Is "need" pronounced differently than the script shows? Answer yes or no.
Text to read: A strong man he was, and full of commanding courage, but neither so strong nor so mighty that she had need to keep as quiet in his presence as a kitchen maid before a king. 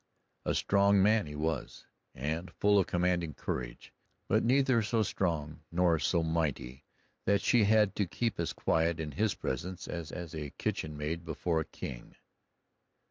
yes